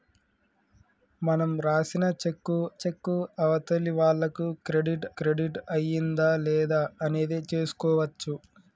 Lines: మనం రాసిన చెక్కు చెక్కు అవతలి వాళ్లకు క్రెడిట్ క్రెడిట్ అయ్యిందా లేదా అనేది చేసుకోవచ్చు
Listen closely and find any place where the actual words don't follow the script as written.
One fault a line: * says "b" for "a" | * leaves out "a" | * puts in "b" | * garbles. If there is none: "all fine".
all fine